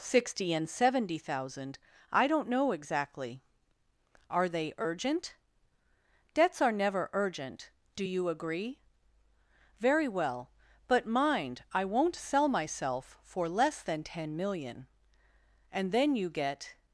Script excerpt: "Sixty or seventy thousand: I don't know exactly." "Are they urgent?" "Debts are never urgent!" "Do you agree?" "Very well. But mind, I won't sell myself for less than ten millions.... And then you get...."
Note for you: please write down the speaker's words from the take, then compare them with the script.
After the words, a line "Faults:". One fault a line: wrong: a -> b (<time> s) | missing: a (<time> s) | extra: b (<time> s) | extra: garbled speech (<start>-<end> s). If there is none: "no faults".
"Sixty and seventy thousand: I don't know exactly." "Are they urgent?" "Debts are never urgent!" "Do you agree?" "Very well. But mind, I won't sell myself for less than ten million.... And then you get...."
Faults:
wrong: or -> and (0.5 s)
wrong: millions -> million (14.4 s)